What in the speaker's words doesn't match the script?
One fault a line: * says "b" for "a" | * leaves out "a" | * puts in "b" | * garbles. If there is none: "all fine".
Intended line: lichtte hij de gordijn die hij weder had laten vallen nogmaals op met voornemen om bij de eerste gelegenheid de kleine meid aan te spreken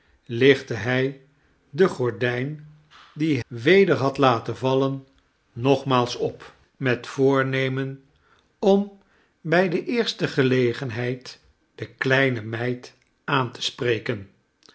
* leaves out "hij"